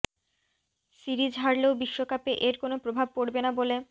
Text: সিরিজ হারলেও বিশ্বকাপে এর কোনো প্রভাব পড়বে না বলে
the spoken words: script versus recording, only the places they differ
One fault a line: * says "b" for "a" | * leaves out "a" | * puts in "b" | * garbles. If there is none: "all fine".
all fine